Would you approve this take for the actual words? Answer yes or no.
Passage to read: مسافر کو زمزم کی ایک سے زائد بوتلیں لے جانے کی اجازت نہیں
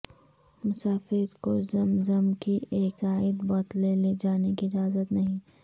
no